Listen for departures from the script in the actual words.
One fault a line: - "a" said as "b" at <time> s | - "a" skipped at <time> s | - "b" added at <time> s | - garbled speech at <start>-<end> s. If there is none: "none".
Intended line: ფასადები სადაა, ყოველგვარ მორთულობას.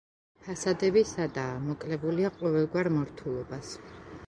- "მოკლებულია" added at 1.7 s